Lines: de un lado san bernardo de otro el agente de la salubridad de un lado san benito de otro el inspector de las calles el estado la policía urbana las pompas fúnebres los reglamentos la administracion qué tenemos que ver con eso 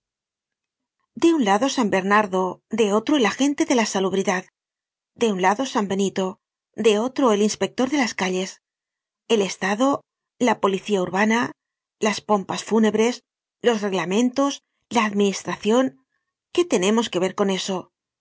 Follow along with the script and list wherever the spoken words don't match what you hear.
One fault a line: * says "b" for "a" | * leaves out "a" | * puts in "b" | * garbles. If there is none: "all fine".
all fine